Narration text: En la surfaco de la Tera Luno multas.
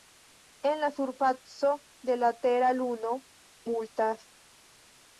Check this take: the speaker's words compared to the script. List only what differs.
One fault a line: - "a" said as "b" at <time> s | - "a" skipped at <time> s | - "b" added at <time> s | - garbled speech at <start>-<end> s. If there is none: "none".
none